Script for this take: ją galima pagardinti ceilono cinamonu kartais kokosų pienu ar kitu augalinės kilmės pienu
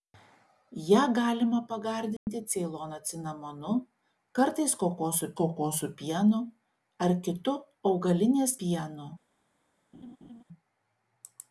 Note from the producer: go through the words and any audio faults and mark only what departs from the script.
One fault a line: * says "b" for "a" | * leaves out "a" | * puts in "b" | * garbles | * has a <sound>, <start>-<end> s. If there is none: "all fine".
* has a dropout, 2.2-2.3 s
* puts in "kokosų"
* leaves out "kilmės"
* has a laugh, 9.9-10.4 s